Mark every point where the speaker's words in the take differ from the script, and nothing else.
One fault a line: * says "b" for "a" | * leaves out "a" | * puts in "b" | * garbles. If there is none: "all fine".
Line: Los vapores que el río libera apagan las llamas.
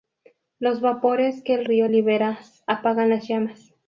all fine